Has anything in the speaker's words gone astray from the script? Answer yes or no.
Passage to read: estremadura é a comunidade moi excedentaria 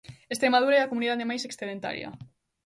yes